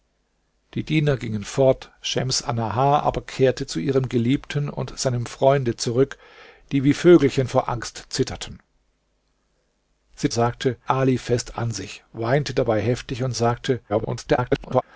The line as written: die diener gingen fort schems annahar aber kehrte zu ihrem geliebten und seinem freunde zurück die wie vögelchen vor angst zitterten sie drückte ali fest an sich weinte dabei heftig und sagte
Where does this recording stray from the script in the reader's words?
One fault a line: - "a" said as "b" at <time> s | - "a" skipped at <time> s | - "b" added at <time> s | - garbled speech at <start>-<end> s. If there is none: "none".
- "drückte" said as "sagte" at 10.3 s
- garbled speech at 13.9-14.8 s